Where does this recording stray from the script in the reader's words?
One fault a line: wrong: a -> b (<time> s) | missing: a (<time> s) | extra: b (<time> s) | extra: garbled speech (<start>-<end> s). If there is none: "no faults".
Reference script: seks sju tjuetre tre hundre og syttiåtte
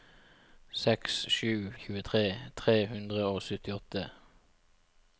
no faults